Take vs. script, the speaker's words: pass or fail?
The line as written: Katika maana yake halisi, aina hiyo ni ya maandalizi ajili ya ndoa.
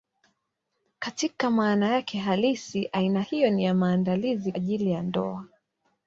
pass